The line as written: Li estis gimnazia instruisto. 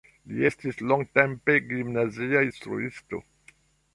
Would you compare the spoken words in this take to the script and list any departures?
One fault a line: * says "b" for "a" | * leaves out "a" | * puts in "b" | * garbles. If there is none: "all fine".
* puts in "longtempe"